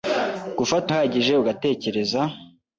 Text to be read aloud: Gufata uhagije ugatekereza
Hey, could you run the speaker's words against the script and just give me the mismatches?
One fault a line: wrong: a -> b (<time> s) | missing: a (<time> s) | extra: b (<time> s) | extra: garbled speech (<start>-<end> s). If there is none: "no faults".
no faults